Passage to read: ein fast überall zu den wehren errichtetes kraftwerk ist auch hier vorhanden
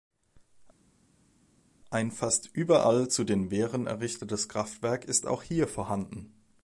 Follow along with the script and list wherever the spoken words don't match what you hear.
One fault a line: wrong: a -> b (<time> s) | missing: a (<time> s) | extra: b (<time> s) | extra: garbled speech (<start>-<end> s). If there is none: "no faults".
no faults